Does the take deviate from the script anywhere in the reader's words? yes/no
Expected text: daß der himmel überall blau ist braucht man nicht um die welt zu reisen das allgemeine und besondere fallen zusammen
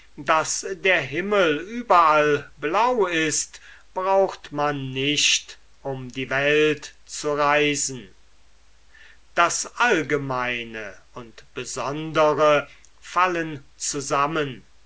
no